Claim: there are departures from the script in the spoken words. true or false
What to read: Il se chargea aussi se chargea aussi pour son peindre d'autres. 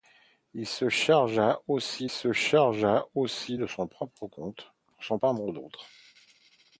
false